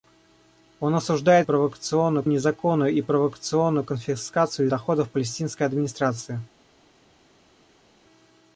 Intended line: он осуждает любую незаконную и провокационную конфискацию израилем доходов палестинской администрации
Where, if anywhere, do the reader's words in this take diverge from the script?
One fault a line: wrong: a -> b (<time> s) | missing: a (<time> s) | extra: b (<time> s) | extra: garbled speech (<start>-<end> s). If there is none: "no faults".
wrong: любую -> провокационную (1.4 s)
missing: израилем (4.7 s)